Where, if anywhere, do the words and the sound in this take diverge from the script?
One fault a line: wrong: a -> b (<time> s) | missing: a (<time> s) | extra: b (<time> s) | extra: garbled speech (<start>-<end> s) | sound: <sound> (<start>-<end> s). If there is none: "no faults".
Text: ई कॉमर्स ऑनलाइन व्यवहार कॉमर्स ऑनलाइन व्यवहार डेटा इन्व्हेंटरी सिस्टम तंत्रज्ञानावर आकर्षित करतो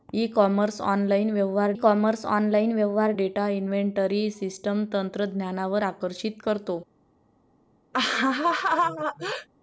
sound: laugh (7.9-9.5 s)